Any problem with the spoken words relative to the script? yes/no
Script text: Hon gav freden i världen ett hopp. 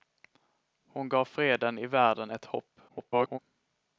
yes